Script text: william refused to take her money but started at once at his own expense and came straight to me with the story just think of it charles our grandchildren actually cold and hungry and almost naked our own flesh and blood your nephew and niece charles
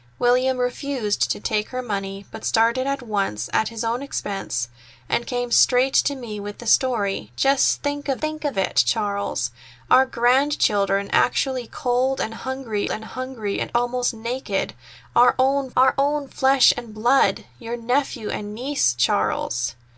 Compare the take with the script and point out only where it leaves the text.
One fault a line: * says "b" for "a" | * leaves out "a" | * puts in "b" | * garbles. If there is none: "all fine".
* puts in "think of"
* puts in "hungry and"
* puts in "our own"